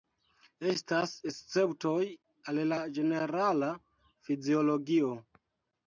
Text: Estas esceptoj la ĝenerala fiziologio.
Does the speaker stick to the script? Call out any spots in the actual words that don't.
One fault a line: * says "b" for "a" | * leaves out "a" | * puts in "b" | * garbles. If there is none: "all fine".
* puts in "al"